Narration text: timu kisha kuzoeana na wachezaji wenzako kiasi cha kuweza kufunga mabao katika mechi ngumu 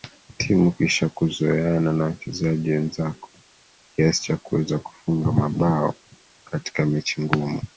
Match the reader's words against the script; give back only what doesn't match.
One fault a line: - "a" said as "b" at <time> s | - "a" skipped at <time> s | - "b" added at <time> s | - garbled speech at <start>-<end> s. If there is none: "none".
none